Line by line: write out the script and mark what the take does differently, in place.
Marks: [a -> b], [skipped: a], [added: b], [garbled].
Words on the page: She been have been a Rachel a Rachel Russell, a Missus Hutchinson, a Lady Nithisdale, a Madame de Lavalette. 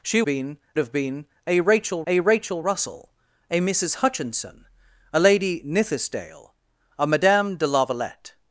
She been have been a Rachel a Rachel Russell, a Missus Hutchinson, a Lady Nithisdale, a Madame de Lavalette.